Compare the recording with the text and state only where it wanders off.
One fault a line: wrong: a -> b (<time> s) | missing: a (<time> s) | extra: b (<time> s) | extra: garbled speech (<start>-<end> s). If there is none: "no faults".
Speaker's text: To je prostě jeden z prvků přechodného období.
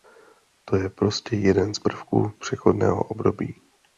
no faults